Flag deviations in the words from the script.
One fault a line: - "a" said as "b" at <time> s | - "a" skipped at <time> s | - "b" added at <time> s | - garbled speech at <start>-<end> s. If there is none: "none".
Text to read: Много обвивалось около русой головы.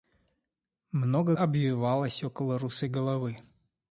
none